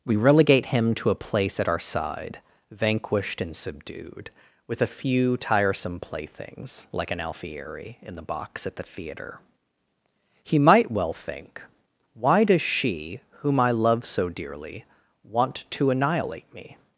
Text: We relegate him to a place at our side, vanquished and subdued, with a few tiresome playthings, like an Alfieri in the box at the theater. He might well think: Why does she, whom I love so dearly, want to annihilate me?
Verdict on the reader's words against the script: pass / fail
pass